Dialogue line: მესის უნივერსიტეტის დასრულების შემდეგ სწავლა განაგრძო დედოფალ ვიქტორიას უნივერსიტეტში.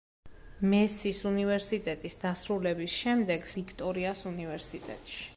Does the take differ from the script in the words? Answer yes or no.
yes